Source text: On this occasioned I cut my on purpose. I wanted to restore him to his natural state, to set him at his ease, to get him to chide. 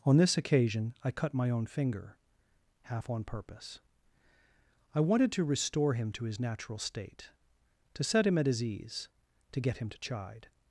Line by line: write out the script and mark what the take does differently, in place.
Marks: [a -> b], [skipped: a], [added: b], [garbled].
On this [occasioned -> occasion] I cut my [added: own finger half] on purpose. I wanted to restore him to his natural state, to set him at his ease, to get him to chide.